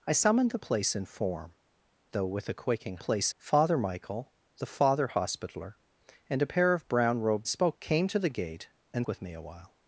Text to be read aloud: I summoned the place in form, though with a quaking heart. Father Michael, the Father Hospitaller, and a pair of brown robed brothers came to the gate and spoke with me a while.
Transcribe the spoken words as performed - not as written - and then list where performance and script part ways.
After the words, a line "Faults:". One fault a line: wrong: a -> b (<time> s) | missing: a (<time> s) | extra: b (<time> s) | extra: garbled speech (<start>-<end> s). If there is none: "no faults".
I summoned the place in form, though with a quaking place. Father Michael, the Father Hospitaller, and a pair of brown robed spoke came to the gate and with me a while.
Faults:
wrong: heart -> place (3.0 s)
wrong: brothers -> spoke (7.5 s)
missing: spoke (9.1 s)